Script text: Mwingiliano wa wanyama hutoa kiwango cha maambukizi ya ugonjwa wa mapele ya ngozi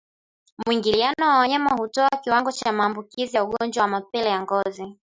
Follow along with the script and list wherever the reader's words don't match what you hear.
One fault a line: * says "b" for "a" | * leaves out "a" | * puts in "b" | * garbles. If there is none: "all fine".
all fine